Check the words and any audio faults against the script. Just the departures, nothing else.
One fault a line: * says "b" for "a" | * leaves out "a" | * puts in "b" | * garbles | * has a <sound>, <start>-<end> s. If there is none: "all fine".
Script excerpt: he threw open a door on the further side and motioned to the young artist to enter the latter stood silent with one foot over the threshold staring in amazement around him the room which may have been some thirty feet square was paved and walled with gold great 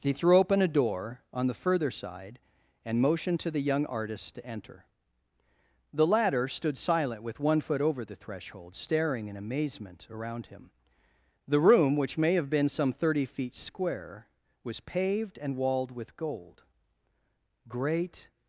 all fine